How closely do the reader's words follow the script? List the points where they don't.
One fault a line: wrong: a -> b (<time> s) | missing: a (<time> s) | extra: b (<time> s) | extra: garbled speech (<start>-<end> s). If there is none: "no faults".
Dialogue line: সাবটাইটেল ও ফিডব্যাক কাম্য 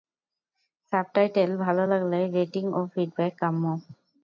extra: ভালো লাগলে রেটিং (1.6 s)